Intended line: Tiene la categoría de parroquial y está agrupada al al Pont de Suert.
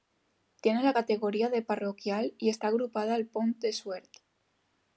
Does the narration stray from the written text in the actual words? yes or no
yes